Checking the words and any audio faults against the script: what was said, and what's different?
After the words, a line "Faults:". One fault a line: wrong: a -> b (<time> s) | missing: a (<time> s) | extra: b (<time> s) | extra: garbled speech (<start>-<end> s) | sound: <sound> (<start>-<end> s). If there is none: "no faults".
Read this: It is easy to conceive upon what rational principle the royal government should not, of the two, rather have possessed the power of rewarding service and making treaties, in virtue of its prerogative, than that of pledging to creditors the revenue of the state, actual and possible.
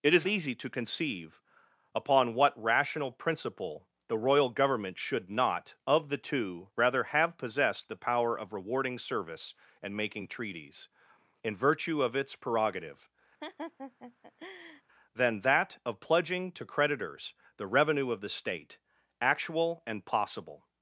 It is easy to conceive upon what rational principle the royal government should not, of the two, rather have possessed the power of rewarding service and making treaties, in virtue of its prerogative, than that of pledging to creditors the revenue of the state, actual and possible.
Faults:
sound: laugh (13.4-14.8 s)